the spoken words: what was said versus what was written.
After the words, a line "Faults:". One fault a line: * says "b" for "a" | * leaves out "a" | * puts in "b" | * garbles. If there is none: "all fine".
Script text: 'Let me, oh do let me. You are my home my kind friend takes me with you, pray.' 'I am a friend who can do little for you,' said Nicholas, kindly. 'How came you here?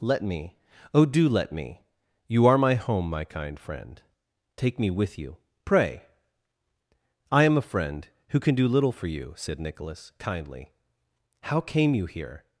'Let me, oh do let me. You are my home my kind friend take me with you, pray.' 'I am a friend who can do little for you,' said Nicholas, kindly. 'How came you here?
Faults:
* says "take" for "takes"